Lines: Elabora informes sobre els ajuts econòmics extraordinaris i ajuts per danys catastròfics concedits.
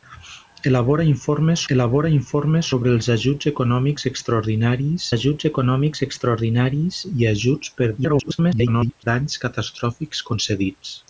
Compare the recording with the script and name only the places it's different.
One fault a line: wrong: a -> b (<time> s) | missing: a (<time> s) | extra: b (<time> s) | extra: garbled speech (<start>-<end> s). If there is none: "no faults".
extra: elabora informes (1.7 s)
extra: ajuts econòmics extraordinaris (5.1 s)
extra: garbled speech (8.0-9.0 s)